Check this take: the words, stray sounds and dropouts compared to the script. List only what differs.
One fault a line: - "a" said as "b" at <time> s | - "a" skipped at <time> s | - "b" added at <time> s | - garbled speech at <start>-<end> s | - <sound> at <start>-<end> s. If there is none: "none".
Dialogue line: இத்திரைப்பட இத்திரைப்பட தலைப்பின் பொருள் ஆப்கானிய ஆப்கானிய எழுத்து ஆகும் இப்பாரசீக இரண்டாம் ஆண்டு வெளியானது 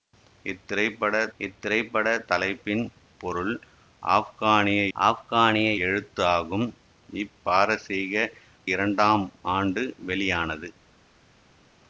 none